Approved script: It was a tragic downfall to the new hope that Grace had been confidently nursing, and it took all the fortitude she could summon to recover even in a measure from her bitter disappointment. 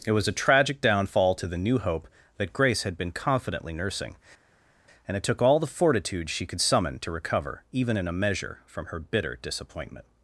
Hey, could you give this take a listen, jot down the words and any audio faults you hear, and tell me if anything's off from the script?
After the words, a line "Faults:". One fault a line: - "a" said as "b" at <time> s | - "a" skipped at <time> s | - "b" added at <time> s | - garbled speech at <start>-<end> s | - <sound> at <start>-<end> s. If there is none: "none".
It was a tragic downfall to the new hope that Grace had been confidently nursing, and it took all the fortitude she could summon to recover even in a measure from her bitter disappointment.
Faults:
none